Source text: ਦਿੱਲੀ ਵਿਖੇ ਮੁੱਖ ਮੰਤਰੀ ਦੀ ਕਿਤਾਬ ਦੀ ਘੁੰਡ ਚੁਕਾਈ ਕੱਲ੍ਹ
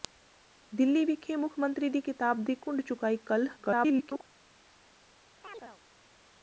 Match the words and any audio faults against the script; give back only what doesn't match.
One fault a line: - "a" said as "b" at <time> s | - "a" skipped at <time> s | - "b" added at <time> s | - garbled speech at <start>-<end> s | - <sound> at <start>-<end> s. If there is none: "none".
- garbled speech at 3.6-4.2 s
- chirp at 5.4-5.8 s